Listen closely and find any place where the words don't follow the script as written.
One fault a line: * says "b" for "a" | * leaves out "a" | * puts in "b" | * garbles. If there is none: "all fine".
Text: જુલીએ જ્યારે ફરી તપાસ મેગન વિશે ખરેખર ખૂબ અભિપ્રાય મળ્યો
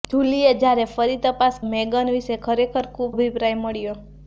all fine